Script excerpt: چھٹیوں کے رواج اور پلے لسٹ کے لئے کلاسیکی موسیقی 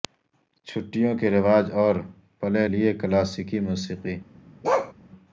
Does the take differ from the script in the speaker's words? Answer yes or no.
yes